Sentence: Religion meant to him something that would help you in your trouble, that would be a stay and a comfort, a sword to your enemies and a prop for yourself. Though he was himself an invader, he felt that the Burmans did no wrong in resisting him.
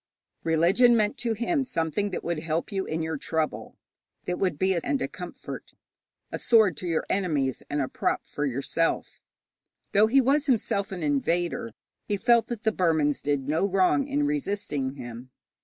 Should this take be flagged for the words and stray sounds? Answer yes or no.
yes